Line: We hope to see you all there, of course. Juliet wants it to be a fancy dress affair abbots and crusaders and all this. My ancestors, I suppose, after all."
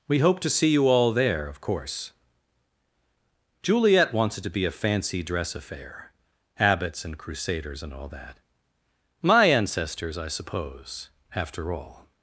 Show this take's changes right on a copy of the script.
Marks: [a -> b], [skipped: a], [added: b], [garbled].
We hope to see you all there, of course. Juliet wants it to be a fancy dress affair abbots and crusaders and all [this. -> that] My ancestors, I suppose, after all."